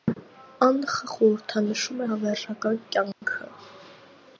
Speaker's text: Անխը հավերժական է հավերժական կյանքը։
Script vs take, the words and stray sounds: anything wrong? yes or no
yes